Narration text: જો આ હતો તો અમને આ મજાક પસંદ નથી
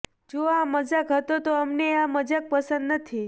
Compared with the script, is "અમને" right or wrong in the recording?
right